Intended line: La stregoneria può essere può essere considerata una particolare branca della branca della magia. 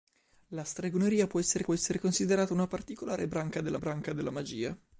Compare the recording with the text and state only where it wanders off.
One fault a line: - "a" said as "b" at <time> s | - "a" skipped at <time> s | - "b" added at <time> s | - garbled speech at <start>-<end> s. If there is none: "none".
none